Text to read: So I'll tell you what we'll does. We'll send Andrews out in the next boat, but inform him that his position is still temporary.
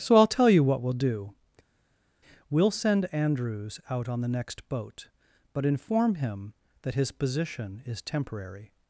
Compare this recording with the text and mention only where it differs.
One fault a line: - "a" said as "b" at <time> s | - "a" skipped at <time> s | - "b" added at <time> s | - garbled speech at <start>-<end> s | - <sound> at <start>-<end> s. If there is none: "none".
- "does" said as "do" at 0.9 s
- "in" said as "on" at 4.1 s
- "still" skipped at 8.0 s